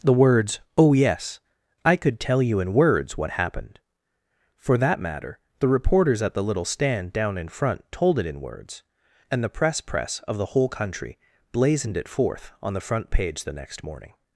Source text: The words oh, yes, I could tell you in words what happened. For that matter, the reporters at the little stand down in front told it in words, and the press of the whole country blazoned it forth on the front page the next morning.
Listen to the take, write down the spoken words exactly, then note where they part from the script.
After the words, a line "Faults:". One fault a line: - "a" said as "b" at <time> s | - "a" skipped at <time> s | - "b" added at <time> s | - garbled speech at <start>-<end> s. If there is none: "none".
The words oh, yes, I could tell you in words what happened. For that matter, the reporters at the little stand down in front told it in words, and the press press of the whole country blazoned it forth on the front page the next morning.
Faults:
- "press" added at 9.8 s